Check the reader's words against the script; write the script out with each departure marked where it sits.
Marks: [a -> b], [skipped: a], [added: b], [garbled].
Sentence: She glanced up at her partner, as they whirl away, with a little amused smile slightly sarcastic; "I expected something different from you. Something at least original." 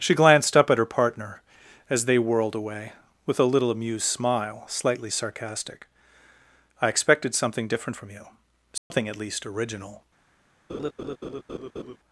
She glanced up at her partner, as they [whirl -> whirled] away, with a little amused smile slightly sarcastic; "I expected something different from you. Something at least original."